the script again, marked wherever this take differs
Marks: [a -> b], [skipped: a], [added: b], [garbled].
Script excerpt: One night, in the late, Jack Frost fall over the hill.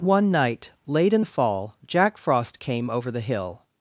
One night, [added: late] in the [late, -> fall] Jack Frost [fall -> came] over the hill.